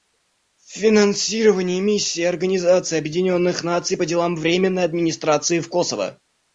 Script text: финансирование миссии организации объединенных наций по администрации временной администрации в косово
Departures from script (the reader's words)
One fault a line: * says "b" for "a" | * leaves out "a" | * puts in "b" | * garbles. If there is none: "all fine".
* says "делам" for "администрации"